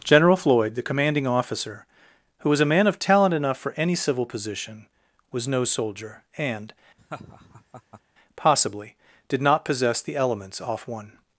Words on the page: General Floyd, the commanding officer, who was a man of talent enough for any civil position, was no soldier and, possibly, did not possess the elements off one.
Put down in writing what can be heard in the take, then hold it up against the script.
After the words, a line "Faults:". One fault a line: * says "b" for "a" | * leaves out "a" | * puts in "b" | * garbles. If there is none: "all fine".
General Floyd, the commanding officer, who was a man of talent enough for any civil position, was no soldier and, possibly, did not possess the elements off one.
Faults:
all fine